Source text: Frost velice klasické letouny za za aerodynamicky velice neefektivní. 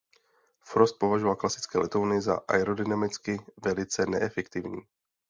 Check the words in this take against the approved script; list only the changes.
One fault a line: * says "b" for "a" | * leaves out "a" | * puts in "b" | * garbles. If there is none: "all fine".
* says "považoval" for "velice"
* leaves out "za"